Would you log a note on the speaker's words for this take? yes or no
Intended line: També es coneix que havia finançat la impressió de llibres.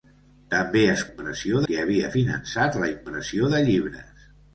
yes